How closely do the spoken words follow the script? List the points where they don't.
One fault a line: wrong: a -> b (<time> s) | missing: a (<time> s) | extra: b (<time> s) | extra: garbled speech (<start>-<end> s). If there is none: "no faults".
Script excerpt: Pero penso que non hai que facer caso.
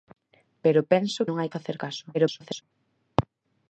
missing: que (1.2 s)
missing: que (1.5 s)
extra: garbled speech (2.1-2.6 s)